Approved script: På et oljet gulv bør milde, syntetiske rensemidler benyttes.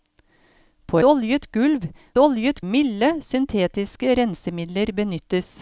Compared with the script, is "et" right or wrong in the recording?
wrong